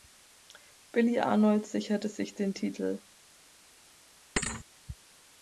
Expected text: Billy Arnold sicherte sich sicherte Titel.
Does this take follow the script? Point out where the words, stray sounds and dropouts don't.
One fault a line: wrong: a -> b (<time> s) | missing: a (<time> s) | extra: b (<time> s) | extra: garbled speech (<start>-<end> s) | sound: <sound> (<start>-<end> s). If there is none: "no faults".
wrong: sicherte -> den (2.3 s)
sound: thud (4.4-4.6 s)